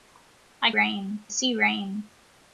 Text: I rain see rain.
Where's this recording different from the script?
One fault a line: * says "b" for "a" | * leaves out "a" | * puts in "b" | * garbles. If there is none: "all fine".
all fine